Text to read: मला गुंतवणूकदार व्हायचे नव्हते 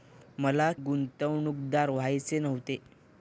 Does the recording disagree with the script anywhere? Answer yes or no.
no